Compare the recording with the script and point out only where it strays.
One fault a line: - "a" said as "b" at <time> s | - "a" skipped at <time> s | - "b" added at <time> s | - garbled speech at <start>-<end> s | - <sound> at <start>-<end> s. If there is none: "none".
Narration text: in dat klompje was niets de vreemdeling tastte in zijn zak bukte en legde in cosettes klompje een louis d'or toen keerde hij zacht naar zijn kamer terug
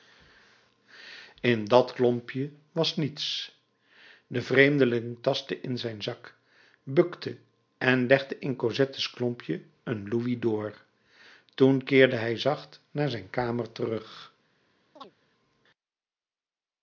- chirp at 15.0-15.1 s